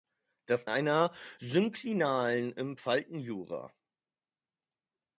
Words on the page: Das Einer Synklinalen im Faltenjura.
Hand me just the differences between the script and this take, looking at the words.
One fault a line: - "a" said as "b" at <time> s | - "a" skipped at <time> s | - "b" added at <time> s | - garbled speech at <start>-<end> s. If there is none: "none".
none